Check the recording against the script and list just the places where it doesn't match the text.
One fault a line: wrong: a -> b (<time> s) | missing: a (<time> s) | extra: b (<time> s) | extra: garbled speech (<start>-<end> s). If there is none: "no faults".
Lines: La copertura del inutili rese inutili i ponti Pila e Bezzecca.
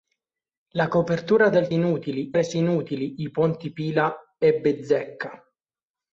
no faults